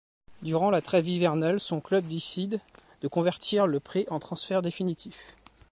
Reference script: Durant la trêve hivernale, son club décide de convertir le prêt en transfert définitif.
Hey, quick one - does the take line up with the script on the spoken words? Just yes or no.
yes